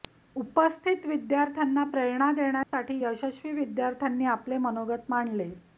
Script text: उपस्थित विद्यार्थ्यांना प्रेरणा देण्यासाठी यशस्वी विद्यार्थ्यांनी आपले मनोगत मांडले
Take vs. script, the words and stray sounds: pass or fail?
fail